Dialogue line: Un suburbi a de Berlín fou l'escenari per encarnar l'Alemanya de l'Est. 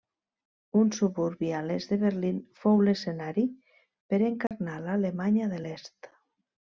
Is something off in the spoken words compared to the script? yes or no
yes